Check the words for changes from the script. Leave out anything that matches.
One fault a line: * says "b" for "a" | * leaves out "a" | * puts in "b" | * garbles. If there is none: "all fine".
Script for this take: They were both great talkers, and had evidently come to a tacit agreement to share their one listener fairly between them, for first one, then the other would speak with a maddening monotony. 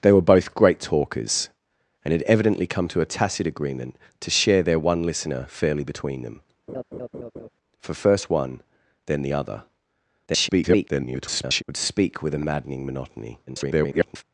* garbles
* garbles